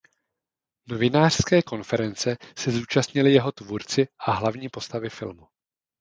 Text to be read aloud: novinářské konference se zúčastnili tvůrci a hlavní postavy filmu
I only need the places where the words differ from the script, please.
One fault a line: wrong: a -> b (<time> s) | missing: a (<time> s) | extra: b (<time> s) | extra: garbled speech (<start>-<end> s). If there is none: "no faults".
extra: jeho (3.3 s)